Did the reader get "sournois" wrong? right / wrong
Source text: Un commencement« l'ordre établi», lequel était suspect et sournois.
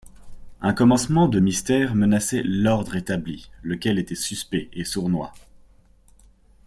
right